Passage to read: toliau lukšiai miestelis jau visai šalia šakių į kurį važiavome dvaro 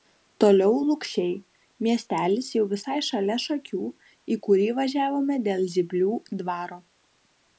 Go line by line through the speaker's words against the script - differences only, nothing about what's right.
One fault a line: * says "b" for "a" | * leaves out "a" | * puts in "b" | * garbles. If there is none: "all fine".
* puts in "dėl zyplių"